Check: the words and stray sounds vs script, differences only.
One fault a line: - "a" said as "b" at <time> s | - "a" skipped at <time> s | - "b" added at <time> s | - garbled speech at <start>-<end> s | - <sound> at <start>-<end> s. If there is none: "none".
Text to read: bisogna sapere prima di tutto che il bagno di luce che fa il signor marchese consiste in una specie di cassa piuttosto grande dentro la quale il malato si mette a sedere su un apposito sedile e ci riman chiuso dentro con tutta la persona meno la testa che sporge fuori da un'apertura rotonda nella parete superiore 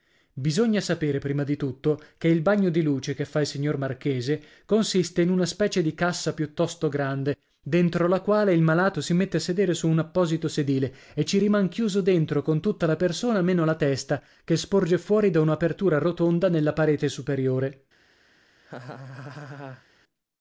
- laugh at 18.6-19.9 s